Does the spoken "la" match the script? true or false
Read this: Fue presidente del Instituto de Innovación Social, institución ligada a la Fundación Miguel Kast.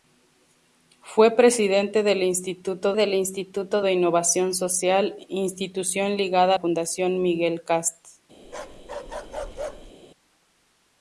false